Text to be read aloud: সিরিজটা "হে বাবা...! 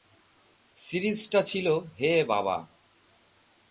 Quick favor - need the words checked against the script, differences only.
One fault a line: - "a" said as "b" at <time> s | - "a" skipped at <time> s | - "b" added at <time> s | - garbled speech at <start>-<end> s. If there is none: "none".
- "ছিল" added at 1.4 s